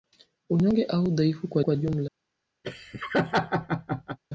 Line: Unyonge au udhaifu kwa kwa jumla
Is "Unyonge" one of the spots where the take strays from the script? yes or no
no